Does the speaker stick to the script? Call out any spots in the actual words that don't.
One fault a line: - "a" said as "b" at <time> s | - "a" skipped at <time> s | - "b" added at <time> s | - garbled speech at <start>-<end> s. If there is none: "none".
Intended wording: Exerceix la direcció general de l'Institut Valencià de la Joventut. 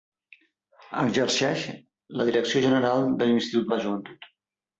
- "Valencià" skipped at 3.7 s